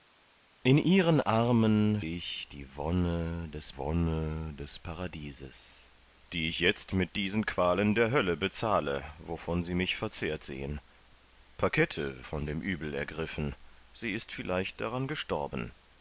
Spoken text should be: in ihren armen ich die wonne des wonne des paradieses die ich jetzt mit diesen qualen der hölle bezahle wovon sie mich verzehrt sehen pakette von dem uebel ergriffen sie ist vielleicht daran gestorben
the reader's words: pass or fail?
pass